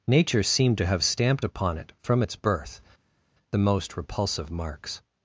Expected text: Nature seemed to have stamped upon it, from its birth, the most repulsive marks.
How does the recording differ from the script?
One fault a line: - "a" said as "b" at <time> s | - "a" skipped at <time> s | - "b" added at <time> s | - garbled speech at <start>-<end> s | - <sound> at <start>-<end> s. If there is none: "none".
none